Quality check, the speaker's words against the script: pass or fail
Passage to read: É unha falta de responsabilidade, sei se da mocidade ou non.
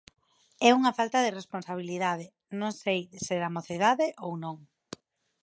fail